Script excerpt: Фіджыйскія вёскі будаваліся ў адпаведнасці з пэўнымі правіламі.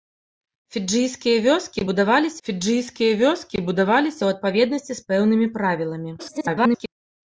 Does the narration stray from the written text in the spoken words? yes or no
yes